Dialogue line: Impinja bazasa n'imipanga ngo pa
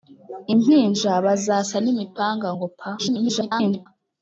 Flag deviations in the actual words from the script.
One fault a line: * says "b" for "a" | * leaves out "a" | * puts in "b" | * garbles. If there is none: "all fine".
* garbles